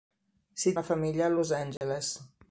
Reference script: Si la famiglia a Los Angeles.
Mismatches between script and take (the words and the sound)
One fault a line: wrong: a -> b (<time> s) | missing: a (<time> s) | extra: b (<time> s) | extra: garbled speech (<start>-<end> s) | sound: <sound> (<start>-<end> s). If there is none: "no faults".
sound: dropout (1.8-1.8 s)